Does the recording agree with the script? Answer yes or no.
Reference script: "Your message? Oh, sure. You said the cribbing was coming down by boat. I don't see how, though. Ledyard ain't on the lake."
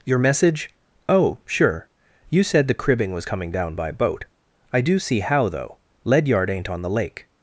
no